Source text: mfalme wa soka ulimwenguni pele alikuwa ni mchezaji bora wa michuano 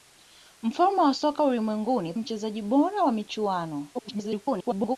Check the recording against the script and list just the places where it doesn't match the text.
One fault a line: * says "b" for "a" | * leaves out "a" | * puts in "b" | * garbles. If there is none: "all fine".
* leaves out "pele alikuwa ni"
* garbles